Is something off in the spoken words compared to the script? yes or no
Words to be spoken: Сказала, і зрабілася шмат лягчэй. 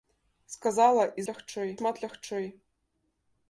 yes